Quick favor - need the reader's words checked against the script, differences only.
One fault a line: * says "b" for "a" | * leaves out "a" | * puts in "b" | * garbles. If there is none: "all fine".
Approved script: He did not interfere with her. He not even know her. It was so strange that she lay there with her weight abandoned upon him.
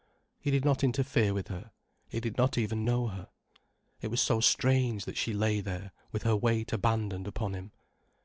* puts in "did"